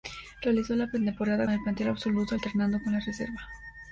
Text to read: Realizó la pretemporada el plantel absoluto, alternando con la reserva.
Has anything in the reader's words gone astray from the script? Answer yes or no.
no